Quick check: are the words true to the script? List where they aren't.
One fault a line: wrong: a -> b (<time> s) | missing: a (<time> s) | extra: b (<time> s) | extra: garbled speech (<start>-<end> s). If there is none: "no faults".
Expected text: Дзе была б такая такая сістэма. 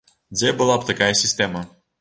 missing: такая (1.1 s)